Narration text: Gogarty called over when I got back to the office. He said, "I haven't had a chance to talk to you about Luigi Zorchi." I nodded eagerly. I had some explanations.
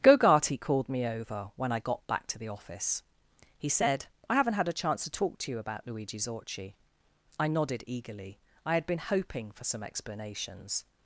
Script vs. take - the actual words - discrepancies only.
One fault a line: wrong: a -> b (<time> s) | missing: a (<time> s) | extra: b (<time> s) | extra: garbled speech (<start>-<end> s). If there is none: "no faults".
extra: me (0.9 s)
extra: been hoping for (8.9 s)